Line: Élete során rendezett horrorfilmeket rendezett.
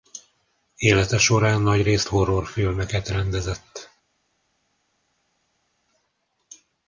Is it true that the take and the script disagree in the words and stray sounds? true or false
true